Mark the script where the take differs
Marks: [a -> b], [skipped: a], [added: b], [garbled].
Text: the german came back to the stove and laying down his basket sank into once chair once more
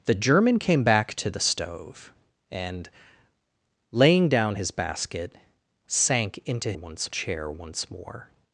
the german came back to the stove and laying down his basket sank into once chair once more